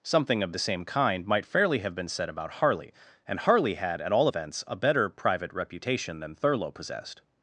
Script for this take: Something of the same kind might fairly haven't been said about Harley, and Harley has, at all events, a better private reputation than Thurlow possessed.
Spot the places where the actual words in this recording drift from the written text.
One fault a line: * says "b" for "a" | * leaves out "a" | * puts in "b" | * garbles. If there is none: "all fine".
* says "have" for "haven't"
* says "had" for "has"